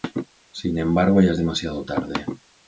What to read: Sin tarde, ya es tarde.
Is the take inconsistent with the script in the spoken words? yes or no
yes